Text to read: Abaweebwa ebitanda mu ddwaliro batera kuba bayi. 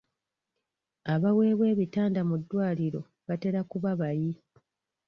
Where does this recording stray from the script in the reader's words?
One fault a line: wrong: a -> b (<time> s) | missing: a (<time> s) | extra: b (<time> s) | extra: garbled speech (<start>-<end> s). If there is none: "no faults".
no faults